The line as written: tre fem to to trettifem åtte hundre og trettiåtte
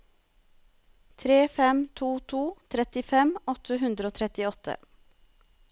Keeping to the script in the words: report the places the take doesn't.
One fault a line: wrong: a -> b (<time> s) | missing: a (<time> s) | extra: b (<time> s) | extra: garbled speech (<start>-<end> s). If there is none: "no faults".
no faults